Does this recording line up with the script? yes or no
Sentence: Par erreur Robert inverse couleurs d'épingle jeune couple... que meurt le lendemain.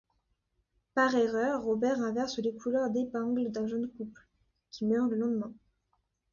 no